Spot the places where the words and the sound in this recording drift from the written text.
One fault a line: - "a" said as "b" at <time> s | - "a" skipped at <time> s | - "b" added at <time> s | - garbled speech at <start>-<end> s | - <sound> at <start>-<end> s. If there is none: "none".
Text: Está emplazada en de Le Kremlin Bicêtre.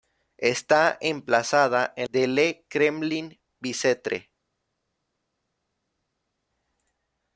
none